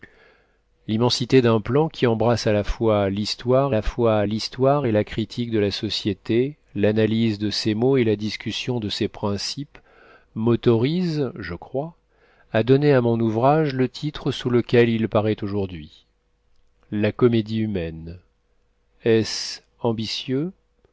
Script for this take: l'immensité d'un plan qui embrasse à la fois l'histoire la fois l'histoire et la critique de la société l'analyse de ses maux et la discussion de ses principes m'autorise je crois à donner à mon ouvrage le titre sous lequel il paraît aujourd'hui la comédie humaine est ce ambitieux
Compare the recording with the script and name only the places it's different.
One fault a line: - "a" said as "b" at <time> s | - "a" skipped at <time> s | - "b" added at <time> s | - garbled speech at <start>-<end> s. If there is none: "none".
none